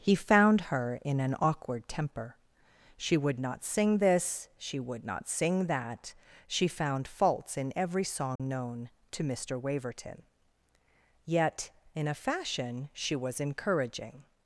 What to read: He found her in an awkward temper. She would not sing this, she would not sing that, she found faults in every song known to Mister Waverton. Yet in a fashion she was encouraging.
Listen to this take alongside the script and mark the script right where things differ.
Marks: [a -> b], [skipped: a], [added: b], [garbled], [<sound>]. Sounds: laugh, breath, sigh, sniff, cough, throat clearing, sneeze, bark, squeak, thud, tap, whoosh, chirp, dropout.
He found her in an awkward temper. She would not sing this, she would not sing that, she found faults in every song [dropout] known to Mister Waverton. Yet in a fashion she was encouraging.